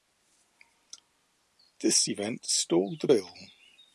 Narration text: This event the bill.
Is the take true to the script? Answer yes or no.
no